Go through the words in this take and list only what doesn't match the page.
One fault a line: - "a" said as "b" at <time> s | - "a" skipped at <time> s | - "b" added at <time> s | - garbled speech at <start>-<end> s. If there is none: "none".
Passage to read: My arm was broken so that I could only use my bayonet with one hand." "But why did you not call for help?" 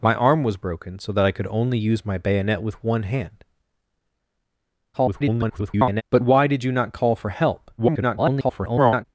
- garbled speech at 4.9-6.0 s
- garbled speech at 7.8-9.1 s